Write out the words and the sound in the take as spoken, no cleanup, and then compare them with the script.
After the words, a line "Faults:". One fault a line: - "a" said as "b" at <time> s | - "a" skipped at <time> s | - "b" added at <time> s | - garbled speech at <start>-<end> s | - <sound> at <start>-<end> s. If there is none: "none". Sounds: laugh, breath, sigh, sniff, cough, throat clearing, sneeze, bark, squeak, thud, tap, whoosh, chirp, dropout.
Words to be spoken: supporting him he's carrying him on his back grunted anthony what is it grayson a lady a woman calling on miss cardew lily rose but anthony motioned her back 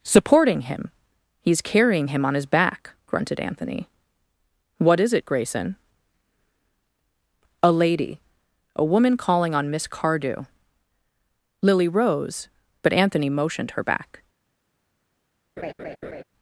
supporting him he's carrying him on his back grunted anthony what is it grayson a lady a woman calling on miss cardew lily rose but anthony motioned her back
Faults:
- laugh at 15.6-16.2 s